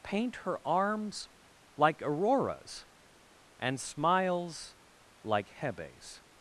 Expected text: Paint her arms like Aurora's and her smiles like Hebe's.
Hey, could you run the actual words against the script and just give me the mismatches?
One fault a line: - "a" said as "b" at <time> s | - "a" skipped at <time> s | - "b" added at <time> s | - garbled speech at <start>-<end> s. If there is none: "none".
- "her" skipped at 3.8 s